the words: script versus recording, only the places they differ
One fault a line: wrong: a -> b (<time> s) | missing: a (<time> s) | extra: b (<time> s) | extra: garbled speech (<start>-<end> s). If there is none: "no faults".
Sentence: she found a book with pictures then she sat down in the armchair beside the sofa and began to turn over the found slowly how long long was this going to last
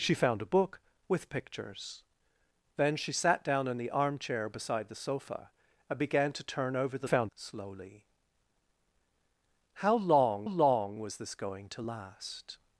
no faults